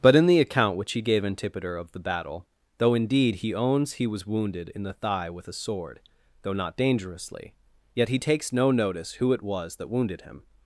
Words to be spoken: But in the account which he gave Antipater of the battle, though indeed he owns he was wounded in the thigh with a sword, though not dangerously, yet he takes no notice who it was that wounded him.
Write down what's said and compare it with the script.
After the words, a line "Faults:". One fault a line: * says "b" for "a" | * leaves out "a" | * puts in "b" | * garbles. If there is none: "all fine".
But in the account which he gave Antipater of the battle, though indeed he owns he was wounded in the thigh with a sword, though not dangerously, yet he takes no notice who it was that wounded him.
Faults:
all fine